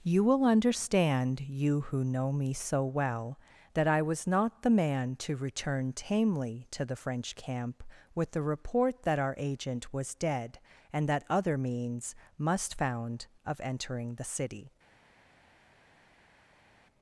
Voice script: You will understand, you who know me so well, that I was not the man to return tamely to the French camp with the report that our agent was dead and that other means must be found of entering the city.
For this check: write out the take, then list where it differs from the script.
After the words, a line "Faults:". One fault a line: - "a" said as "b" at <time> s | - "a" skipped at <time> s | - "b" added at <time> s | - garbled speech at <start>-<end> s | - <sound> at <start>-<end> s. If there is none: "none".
You will understand, you who know me so well, that I was not the man to return tamely to the French camp with the report that our agent was dead and that other means must found of entering the city.
Faults:
- "be" skipped at 12.8 s